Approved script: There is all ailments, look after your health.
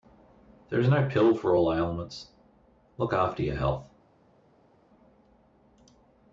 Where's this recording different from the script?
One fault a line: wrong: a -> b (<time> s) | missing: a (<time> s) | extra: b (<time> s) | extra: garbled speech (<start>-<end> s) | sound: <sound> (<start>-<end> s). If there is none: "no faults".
extra: no pill for (0.9 s)